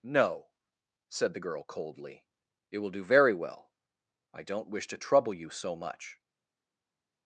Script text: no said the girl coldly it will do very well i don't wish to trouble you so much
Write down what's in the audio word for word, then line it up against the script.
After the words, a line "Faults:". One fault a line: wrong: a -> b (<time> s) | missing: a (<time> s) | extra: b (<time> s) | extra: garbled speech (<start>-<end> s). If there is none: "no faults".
no said the girl coldly it will do very well i don't wish to trouble you so much
Faults:
no faults